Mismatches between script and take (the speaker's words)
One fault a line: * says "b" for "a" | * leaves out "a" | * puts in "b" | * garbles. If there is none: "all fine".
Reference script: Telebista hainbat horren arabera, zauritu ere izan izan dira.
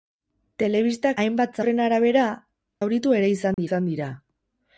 all fine